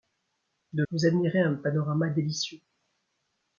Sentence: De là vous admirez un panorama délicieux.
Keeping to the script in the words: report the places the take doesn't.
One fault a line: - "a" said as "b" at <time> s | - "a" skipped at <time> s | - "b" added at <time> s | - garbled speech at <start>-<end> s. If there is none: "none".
- "là" skipped at 0.8 s